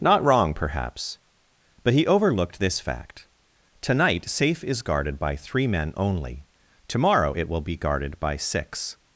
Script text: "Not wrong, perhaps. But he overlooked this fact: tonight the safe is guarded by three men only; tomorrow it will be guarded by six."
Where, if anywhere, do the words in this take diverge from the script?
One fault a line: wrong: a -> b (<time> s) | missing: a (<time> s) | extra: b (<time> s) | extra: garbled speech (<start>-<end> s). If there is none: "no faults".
missing: the (4.3 s)